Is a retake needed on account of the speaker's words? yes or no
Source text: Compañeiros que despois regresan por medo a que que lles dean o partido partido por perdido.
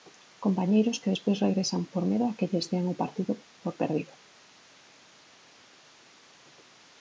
yes